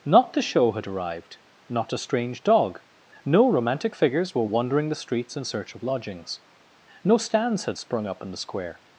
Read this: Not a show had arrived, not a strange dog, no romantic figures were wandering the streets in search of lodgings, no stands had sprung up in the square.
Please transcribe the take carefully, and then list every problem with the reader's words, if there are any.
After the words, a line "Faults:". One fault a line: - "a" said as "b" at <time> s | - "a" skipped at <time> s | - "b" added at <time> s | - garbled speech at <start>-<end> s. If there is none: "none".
Not the show had arrived, not a strange dog, no romantic figures were wandering the streets in search of lodgings, no stands had sprung up in the square.
Faults:
- "a" said as "the" at 0.3 s